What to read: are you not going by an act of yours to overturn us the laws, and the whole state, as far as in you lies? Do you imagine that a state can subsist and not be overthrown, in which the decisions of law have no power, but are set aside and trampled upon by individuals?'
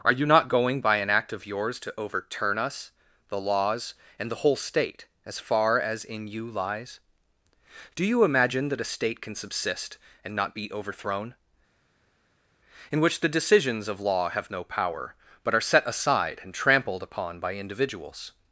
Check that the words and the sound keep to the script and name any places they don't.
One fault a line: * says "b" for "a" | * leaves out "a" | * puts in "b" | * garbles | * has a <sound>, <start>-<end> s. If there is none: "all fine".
all fine